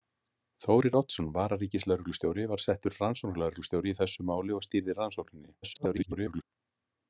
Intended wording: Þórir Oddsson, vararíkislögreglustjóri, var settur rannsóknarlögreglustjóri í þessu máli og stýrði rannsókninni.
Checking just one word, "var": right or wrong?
right